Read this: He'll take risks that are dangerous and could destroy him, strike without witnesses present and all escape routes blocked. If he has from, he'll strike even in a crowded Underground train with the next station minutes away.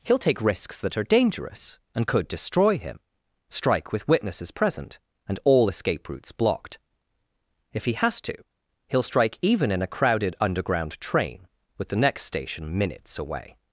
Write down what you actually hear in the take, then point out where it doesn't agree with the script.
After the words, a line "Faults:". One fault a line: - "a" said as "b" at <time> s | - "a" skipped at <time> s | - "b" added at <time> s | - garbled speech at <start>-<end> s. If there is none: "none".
He'll take risks that are dangerous and could destroy him, strike with witnesses present and all escape routes blocked. If he has to, he'll strike even in a crowded Underground train with the next station minutes away.
Faults:
- "without" said as "with" at 3.9 s
- "from" said as "to" at 8.2 s